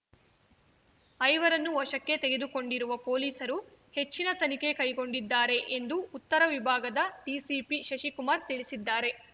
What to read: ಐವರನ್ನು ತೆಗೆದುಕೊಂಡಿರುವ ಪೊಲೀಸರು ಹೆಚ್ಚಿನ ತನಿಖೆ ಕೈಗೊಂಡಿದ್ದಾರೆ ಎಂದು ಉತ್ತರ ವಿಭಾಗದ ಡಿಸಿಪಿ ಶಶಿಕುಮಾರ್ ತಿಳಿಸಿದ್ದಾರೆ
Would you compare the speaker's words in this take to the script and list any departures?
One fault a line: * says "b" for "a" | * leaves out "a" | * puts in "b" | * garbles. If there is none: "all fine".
* puts in "ವಶಕ್ಕೆ"